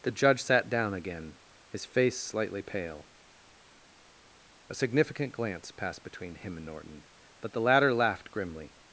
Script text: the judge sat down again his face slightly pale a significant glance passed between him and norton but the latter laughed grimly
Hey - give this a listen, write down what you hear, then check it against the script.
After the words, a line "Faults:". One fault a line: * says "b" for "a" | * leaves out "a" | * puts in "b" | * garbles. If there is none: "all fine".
the judge sat down again his face slightly pale a significant glance passed between him and norton but the latter laughed grimly
Faults:
all fine